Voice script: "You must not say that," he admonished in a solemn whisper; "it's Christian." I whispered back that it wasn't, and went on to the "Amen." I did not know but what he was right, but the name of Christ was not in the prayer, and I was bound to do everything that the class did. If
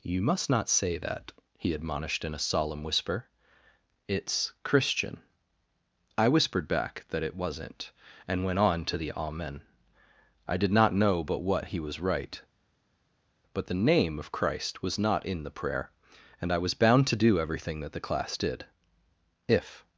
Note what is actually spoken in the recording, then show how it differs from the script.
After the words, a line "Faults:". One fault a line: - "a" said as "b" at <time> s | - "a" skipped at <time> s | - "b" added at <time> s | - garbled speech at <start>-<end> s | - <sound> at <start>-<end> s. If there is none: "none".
"You must not say that," he admonished in a solemn whisper; "it's Christian." I whispered back that it wasn't, and went on to the "Amen." I did not know but what he was right, but the name of Christ was not in the prayer, and I was bound to do everything that the class did. If
Faults:
none